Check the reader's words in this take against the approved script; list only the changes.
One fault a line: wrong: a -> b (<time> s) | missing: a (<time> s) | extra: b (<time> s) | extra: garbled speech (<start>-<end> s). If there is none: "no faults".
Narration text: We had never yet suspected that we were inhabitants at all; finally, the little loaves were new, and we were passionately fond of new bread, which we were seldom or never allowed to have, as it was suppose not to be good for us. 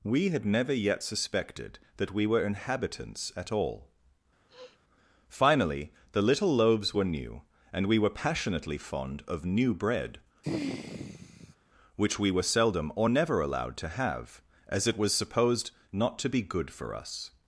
wrong: suppose -> supposed (15.1 s)